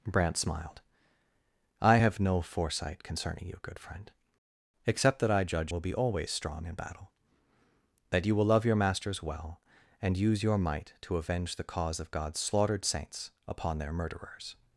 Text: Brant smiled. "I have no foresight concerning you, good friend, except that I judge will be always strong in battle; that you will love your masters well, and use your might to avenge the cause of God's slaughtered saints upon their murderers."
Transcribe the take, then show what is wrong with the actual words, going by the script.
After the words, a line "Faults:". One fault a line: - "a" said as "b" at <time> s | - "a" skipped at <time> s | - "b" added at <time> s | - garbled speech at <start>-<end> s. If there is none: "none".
Brant smiled. "I have no foresight concerning you, good friend, except that I judge will be always strong in battle; that you will love your masters well, and use your might to avenge the cause of God's slaughtered saints upon their murderers."
Faults:
none